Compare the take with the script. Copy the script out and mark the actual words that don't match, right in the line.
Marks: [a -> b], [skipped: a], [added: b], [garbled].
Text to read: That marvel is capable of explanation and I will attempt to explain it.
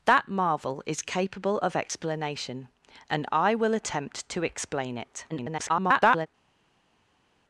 That marvel is capable of explanation and I will attempt to explain it. [garbled]